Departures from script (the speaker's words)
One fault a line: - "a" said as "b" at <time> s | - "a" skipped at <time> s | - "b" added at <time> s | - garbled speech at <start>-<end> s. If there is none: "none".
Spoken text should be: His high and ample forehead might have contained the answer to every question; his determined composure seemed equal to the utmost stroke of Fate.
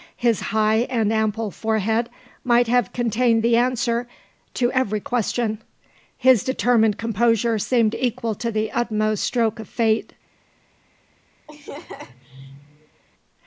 none